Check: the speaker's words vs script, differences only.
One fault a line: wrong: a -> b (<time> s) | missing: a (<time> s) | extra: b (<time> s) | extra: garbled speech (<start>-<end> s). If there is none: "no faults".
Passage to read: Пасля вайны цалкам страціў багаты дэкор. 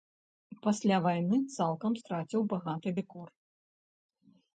no faults